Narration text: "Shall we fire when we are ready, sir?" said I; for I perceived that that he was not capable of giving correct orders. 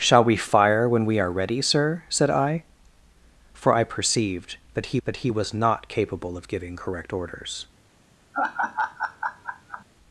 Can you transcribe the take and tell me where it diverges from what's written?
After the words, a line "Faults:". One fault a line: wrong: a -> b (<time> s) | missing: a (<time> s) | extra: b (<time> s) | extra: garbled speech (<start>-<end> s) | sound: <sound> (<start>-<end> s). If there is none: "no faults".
"Shall we fire when we are ready, sir?" said I; for I perceived that that he was not capable of giving correct orders.
Faults:
sound: laugh (8.3-9.8 s)